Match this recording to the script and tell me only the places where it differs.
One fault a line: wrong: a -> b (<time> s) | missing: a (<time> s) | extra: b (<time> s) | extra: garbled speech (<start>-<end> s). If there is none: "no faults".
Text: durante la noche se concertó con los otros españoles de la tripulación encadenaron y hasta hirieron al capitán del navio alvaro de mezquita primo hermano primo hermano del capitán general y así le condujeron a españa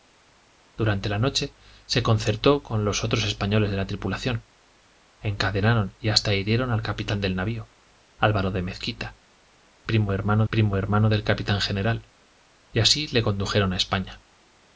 no faults